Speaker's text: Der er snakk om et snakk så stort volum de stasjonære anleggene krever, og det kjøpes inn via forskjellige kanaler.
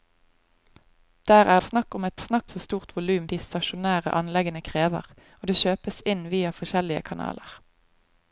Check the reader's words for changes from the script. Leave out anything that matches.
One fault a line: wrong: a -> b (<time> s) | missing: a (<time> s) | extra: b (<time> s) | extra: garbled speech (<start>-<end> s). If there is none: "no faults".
no faults